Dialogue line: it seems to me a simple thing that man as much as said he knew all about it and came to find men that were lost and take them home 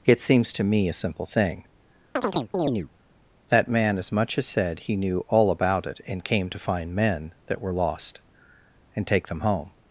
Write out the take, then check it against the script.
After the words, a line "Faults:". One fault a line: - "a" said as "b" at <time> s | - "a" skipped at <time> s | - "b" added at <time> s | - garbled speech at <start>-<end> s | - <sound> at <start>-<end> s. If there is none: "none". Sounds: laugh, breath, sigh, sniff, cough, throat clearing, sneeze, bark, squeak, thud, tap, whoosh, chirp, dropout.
it seems to me a simple thing that man as much as said he knew all about it and came to find men that were lost and take them home
Faults:
- chirp at 2.2-2.9 s